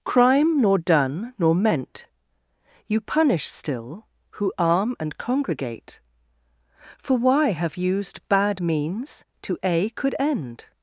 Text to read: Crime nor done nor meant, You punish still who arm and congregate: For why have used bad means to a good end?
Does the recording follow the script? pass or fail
fail